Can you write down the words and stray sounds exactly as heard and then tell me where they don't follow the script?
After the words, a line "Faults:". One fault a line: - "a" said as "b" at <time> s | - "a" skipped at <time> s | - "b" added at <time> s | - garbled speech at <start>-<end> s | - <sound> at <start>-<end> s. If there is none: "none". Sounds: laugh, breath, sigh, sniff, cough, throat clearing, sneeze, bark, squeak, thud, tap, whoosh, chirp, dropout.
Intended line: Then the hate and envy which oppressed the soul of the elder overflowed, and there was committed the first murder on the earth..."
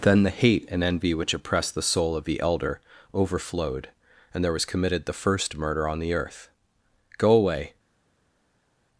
Then the hate and envy which oppressed the soul of the elder overflowed, and there was committed the first murder on the earth..." "Go away
Faults:
- "Go away" added at 7.2 s